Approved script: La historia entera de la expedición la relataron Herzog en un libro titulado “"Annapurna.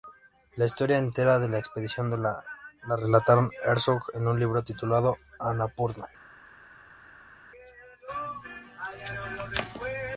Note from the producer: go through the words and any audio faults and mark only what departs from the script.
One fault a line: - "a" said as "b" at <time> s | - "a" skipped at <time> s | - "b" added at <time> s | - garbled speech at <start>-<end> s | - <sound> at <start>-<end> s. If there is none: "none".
none